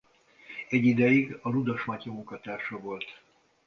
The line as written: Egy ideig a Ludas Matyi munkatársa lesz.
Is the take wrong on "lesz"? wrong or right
wrong